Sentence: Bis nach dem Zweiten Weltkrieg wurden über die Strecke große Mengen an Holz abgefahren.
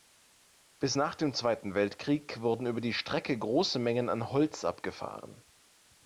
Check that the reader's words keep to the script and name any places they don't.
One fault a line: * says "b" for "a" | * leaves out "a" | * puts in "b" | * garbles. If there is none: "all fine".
all fine